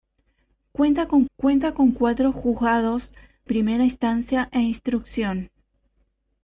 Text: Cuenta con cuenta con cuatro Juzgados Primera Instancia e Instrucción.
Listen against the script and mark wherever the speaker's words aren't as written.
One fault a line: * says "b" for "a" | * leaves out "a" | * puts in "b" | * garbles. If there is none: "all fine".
all fine